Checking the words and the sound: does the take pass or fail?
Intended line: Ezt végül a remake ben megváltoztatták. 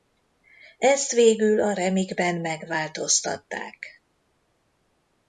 pass